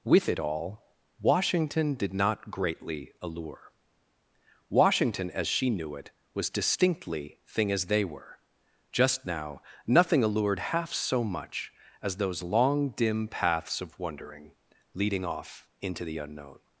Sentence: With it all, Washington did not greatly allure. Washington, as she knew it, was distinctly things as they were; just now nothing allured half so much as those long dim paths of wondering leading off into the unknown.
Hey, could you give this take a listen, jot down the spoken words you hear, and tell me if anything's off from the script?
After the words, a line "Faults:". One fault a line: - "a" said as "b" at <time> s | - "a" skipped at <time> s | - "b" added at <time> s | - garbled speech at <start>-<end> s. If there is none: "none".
With it all, Washington did not greatly allure. Washington, as she knew it, was distinctly thing as they were; just now nothing allured half so much as those long dim paths of wondering leading off into the unknown.
Faults:
- "things" said as "thing" at 7.5 s